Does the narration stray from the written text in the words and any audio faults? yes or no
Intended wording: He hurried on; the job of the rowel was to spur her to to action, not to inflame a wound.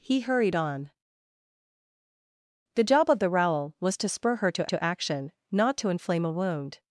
no